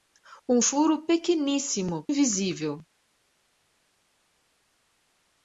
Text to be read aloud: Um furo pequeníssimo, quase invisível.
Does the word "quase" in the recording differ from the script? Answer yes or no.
yes